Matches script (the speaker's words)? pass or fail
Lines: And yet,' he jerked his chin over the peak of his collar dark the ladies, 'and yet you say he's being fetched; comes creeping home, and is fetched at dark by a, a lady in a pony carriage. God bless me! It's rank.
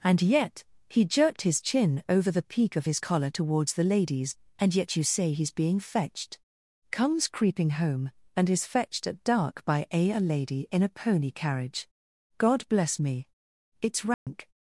fail